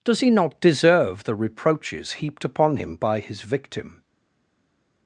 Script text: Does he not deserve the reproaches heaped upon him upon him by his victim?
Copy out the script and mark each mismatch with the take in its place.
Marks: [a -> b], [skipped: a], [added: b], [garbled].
Does he not deserve the reproaches heaped upon him [skipped: upon him] by his victim?